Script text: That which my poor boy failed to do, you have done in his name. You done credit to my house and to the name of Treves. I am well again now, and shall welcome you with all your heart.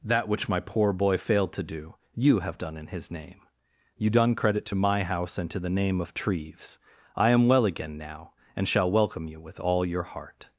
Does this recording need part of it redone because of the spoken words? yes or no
no